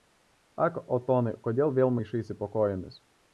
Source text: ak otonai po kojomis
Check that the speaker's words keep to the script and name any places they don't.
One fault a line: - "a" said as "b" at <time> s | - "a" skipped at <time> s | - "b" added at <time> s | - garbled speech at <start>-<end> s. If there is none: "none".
- "kodėl vėl maišaisi" added at 1.5 s